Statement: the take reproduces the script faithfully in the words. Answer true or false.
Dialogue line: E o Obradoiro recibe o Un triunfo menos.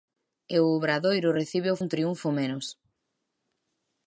true